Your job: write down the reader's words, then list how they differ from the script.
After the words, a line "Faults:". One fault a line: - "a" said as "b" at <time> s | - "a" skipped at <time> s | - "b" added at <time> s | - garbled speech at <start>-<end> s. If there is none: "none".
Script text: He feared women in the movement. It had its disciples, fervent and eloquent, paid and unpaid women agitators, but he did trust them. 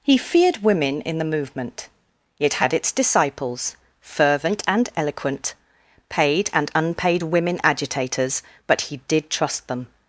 He feared women in the movement. It had its disciples, fervent and eloquent, paid and unpaid women agitators, but he did trust them.
Faults:
none